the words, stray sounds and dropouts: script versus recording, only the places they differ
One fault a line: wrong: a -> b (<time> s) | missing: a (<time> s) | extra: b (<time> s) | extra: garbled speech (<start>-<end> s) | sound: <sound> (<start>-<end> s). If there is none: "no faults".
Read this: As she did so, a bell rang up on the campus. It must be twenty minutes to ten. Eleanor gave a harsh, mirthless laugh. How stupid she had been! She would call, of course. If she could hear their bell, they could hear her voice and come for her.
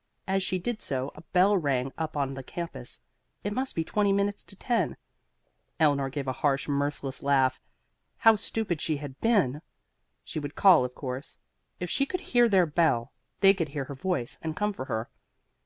no faults